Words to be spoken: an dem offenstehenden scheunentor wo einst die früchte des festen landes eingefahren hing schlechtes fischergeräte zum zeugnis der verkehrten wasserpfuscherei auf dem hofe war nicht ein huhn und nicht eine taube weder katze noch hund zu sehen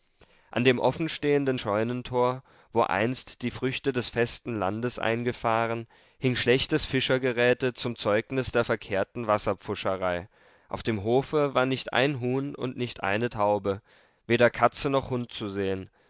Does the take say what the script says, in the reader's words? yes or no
yes